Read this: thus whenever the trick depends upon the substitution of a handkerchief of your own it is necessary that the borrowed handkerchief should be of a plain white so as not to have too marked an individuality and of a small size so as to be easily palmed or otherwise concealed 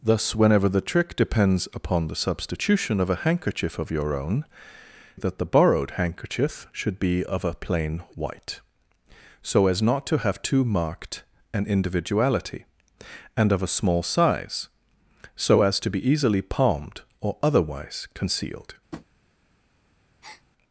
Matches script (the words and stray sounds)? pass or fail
fail